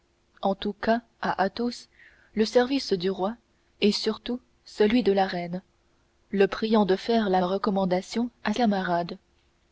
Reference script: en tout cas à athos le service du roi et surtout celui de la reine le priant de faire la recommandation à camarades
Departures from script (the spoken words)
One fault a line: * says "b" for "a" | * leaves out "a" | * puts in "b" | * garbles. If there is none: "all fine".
all fine